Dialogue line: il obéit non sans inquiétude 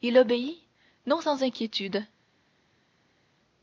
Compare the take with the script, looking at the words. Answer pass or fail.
pass